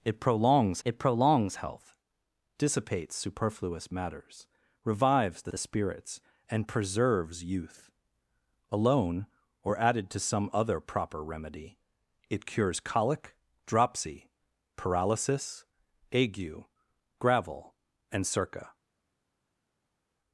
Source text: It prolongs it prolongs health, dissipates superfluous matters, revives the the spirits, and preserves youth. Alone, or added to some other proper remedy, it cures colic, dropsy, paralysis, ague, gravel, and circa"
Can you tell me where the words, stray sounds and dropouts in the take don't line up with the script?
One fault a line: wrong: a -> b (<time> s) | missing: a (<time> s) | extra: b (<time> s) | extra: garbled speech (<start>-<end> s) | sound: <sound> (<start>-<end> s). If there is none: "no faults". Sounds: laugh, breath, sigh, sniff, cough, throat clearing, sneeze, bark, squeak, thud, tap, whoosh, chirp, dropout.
no faults